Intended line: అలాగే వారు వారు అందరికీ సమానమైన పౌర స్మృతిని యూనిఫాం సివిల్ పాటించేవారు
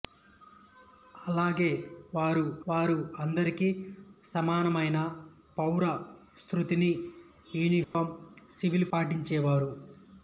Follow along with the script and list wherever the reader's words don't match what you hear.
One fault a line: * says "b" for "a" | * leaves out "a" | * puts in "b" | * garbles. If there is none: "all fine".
all fine